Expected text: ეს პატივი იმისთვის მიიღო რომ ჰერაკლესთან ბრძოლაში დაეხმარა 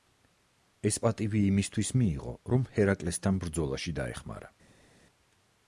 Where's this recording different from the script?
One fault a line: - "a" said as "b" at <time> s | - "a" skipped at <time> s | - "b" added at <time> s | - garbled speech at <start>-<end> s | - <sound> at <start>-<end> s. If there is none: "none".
none